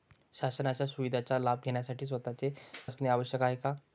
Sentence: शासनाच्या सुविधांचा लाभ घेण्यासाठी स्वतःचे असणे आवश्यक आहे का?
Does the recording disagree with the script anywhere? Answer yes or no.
no